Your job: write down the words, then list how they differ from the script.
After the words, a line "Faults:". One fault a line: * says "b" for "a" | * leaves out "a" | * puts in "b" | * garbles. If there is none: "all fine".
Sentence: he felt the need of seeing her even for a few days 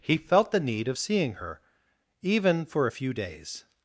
he felt the need of seeing her even for a few days
Faults:
all fine